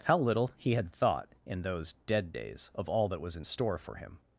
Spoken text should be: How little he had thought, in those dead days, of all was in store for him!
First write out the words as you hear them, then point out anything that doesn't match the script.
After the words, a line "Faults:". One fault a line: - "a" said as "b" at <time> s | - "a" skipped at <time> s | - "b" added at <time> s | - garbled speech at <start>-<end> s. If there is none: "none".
How little he had thought, in those dead days, of all that was in store for him!
Faults:
- "that" added at 3.1 s